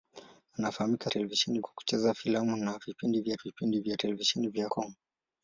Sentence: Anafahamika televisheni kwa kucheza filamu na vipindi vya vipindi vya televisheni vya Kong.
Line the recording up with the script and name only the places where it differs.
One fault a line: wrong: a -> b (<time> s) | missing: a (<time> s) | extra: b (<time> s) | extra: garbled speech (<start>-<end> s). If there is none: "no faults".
no faults